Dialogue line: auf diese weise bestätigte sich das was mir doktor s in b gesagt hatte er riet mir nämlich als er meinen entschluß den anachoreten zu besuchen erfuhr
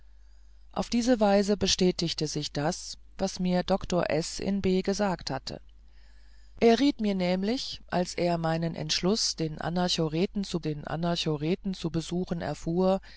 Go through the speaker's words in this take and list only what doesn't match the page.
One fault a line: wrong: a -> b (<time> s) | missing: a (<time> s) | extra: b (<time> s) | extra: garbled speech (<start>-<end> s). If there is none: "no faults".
extra: den anachoreten zu (10.6 s)